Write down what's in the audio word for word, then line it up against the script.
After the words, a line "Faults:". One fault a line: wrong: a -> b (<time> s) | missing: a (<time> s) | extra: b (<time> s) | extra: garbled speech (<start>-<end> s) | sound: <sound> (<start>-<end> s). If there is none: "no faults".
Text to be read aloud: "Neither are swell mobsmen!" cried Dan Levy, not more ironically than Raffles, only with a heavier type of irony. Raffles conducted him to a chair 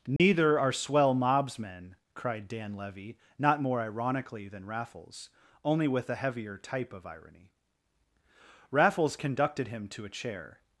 "Neither are swell mobsmen!" cried Dan Levy, not more ironically than Raffles, only with a heavier type of irony. Raffles conducted him to a chair
Faults:
sound: dropout (0.2-0.2 s)